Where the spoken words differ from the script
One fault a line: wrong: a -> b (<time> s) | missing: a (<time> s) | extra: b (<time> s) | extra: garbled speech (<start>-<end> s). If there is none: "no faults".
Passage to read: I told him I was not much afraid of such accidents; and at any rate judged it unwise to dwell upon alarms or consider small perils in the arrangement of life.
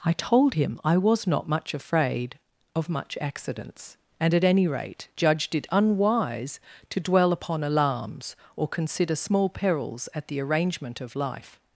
wrong: such -> much (2.9 s)
wrong: in -> at (10.1 s)